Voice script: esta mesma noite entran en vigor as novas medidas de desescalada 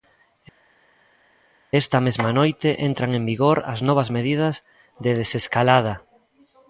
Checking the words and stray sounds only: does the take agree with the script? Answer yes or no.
yes